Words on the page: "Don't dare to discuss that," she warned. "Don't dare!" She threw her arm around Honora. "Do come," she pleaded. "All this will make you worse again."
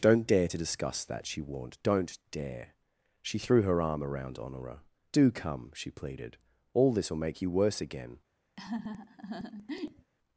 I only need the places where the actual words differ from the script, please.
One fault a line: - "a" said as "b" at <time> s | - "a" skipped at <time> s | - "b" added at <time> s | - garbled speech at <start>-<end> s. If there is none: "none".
none